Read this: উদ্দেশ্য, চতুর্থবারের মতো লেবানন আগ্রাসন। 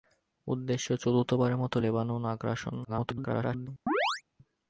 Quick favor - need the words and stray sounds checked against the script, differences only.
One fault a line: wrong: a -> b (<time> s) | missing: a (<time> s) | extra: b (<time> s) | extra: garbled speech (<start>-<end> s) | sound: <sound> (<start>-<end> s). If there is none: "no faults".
extra: garbled speech (2.8-3.7 s)
sound: chirp (3.9-4.2 s)